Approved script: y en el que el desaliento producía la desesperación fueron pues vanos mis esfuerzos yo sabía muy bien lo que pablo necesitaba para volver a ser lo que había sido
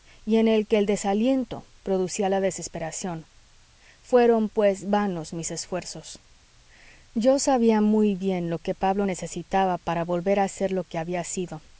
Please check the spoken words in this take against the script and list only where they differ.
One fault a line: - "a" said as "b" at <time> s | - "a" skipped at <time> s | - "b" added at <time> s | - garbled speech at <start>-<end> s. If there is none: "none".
none